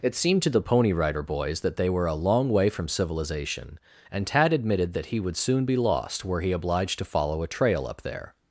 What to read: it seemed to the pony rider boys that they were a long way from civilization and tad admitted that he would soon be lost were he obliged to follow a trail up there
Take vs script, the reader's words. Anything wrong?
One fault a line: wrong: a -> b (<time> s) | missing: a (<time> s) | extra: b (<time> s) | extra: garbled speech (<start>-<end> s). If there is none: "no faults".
no faults